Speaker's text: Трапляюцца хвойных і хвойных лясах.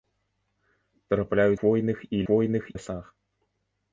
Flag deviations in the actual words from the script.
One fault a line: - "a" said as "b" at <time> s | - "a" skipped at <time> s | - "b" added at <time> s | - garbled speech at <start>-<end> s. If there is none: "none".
none